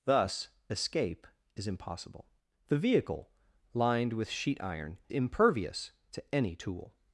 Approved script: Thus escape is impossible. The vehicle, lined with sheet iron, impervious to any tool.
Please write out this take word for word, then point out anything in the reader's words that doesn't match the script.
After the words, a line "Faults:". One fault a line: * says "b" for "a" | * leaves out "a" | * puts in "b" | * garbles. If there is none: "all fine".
Thus escape is impossible. The vehicle, lined with sheet iron, impervious to any tool.
Faults:
all fine